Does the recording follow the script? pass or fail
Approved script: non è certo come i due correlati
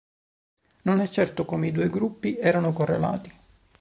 fail